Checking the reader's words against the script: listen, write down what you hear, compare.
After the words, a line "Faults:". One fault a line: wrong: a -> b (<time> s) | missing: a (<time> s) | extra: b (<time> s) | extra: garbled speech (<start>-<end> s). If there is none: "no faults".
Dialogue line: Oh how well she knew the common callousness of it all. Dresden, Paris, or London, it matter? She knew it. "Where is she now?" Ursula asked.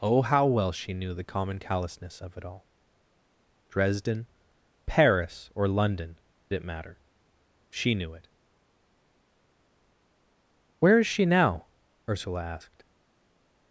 Oh how well she knew the common callousness of it all. Dresden, Paris, or London, it matter? She knew it. "Where is she now?" Ursula asked.
Faults:
no faults